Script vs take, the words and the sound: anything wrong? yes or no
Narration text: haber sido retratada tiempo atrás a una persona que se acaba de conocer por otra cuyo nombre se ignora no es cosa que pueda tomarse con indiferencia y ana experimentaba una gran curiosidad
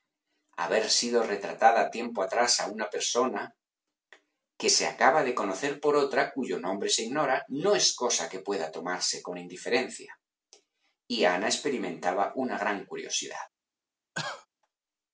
yes